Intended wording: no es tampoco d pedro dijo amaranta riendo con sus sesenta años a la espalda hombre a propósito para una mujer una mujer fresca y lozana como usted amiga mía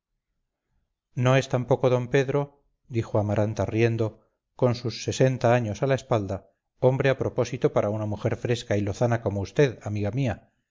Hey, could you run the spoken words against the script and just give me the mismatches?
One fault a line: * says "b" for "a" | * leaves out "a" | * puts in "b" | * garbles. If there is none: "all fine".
* leaves out "una mujer"